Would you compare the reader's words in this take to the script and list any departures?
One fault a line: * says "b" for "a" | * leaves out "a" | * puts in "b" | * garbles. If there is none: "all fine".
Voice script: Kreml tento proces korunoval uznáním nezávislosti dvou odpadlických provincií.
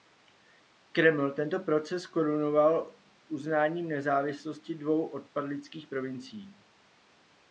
all fine